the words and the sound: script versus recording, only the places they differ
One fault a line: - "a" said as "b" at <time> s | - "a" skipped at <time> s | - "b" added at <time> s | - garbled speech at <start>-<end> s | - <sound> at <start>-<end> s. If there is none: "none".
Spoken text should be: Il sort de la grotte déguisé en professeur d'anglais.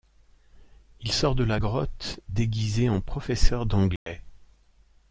- dropout at 4.0-4.1 s